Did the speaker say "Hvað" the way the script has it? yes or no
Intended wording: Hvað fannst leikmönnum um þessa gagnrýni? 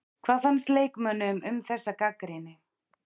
yes